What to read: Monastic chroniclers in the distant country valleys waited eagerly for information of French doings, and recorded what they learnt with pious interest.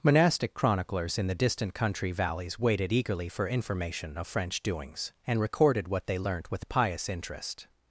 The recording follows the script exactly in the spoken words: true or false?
true